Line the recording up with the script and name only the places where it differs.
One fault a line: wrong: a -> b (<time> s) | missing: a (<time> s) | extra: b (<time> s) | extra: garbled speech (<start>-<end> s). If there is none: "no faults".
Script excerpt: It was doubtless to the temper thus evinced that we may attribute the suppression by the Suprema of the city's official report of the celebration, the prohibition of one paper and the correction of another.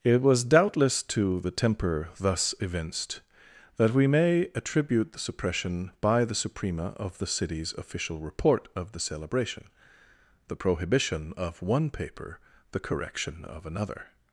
missing: and (12.4 s)